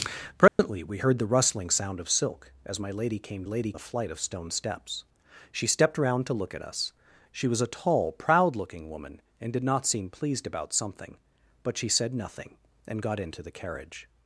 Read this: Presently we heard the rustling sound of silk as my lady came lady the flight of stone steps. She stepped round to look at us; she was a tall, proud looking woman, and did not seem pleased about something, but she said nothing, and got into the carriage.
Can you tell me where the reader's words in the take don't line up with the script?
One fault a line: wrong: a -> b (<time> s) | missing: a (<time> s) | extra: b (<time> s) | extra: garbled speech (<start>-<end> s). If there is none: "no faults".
no faults